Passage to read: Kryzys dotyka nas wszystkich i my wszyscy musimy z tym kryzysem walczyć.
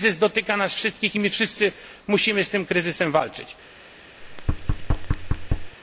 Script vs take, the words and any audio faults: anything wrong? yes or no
yes